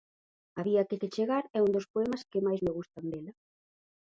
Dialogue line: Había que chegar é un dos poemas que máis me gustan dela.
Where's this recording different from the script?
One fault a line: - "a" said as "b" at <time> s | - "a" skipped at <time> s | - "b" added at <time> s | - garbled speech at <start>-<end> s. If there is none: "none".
- "que" added at 1.0 s